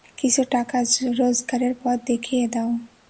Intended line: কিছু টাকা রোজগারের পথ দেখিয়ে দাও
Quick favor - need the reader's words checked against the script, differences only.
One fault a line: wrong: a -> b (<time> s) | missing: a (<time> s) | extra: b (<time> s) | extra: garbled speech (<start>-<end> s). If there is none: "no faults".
no faults